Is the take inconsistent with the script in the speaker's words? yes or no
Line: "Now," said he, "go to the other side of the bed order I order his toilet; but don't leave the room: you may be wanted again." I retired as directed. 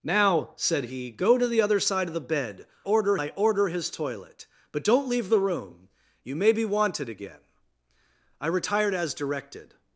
no